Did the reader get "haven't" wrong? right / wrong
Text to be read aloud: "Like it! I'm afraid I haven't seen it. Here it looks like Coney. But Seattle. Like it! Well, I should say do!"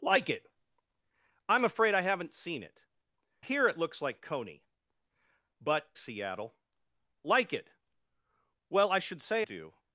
right